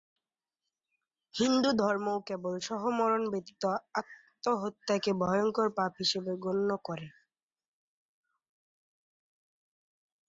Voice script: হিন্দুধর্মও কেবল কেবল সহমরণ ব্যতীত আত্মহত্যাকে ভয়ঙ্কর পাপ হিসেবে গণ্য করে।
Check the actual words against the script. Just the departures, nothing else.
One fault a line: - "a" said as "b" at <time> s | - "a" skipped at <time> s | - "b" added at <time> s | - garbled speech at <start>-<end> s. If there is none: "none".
- "কেবল" skipped at 2.5 s